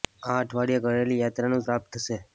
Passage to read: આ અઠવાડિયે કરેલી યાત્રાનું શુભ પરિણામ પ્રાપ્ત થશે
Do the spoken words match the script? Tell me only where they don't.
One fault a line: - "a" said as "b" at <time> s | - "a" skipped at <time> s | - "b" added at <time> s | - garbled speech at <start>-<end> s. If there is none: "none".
- "શુભ પરિણામ" skipped at 1.6 s